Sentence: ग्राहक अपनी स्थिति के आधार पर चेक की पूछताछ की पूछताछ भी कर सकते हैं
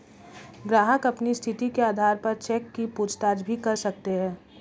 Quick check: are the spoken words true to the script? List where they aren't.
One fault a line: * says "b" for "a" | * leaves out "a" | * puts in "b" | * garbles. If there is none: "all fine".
* leaves out "की पूछताछ"